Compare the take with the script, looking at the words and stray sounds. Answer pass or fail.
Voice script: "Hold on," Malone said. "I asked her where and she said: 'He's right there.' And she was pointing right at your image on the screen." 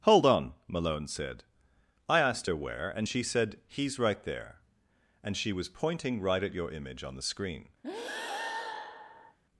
fail